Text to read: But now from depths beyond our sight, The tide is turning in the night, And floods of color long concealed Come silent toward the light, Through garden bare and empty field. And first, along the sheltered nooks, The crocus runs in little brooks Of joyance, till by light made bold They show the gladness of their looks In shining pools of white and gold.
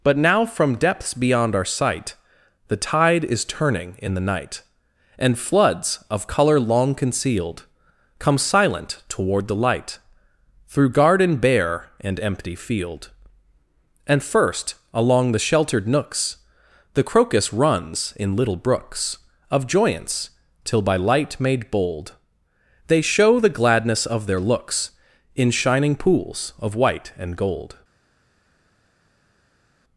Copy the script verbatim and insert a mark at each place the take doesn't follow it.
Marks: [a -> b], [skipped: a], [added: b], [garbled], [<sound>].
But now from depths beyond our sight, The tide is turning in the night, And floods of color long concealed Come silent toward the light, Through garden bare and empty field. And first, along the sheltered nooks, The crocus runs in little brooks Of joyance, till by light made bold They show the gladness of their looks In shining pools of white and gold.